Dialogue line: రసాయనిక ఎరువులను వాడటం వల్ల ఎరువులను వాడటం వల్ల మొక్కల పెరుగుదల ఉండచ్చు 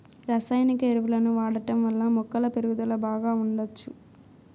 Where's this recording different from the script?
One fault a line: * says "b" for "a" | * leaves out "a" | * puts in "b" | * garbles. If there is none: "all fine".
* leaves out "ఎరువులను వాడటం వల్ల"
* puts in "బాగా"